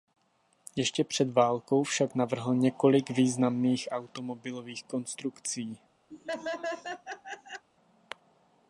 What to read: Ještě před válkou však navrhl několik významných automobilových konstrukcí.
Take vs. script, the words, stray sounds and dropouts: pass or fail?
fail